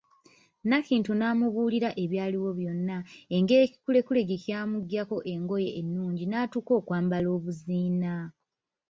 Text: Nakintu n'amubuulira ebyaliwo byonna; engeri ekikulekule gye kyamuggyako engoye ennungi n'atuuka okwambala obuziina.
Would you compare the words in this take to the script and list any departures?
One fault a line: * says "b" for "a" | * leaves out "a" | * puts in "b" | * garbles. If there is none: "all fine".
all fine